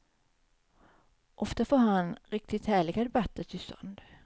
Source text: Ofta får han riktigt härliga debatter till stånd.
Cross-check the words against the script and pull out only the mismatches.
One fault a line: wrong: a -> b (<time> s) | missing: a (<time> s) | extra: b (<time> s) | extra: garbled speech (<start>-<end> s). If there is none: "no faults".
no faults